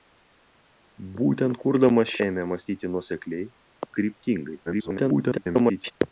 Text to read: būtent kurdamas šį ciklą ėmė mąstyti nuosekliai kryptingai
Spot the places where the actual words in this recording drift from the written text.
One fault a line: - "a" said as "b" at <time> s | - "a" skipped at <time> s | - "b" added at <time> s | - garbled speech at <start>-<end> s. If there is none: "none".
- "šį ciklą" skipped at 2.1 s
- garbled speech at 4.7-5.9 s